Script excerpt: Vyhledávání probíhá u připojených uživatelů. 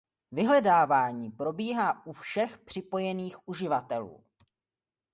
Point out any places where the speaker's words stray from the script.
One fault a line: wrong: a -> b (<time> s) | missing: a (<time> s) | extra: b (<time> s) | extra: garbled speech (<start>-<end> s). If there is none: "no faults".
extra: všech (2.1 s)